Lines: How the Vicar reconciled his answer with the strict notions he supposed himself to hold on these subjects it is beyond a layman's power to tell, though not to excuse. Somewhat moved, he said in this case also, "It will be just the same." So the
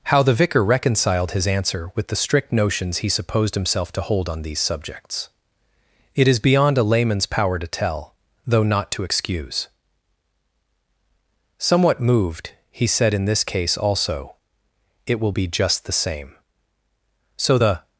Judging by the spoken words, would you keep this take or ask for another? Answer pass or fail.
pass